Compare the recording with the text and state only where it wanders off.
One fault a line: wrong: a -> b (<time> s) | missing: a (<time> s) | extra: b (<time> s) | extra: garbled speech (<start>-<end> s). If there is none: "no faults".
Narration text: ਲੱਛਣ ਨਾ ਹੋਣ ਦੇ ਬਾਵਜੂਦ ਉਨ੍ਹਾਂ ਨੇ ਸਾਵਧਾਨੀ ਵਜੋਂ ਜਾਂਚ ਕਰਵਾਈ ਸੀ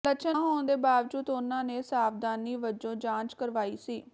missing: ਨਾ (0.4 s)